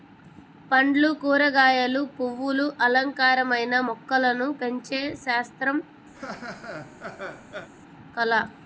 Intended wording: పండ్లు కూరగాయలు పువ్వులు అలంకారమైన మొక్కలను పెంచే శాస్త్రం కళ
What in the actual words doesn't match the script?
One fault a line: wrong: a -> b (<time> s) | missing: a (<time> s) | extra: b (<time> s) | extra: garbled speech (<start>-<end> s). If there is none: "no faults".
no faults